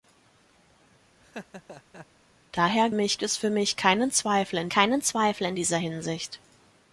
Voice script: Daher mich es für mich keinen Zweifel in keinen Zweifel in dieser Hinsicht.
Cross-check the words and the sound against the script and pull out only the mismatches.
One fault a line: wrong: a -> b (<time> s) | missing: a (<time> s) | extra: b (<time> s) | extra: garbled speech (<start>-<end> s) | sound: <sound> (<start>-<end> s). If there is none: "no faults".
sound: laugh (1.2-2.1 s)